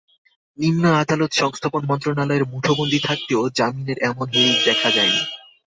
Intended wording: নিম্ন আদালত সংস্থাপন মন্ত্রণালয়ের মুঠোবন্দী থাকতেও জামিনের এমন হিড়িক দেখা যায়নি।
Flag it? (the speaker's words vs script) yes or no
no